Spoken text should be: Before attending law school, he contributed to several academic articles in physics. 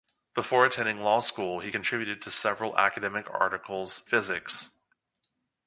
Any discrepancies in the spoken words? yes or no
yes